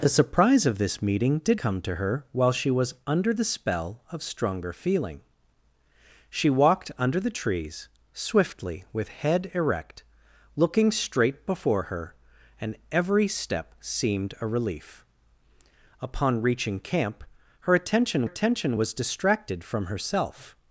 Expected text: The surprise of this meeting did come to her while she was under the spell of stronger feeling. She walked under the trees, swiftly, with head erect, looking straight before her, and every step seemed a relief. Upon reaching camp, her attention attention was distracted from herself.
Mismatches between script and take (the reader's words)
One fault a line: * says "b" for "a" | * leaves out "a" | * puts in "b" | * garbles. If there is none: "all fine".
all fine